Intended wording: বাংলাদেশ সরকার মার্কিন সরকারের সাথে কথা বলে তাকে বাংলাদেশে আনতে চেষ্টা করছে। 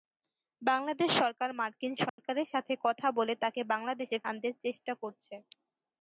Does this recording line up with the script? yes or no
yes